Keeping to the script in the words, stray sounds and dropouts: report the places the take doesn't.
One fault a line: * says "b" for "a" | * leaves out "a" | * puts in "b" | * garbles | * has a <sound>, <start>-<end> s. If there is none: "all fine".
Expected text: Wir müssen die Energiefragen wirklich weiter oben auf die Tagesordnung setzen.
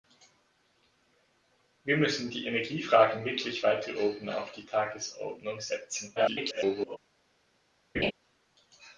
* garbles
* has a laugh, 7.9-8.1 s